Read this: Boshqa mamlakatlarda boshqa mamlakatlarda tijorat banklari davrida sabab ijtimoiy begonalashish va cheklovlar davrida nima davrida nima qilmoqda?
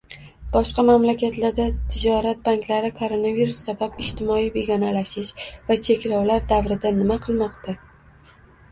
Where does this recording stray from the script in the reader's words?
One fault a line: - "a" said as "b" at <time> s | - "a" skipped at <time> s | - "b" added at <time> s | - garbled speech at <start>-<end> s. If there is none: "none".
- "boshqa mamlakatlarda" skipped at 1.7 s
- "davrida" said as "koronavirus" at 3.0 s
- "davrida nima" skipped at 7.2 s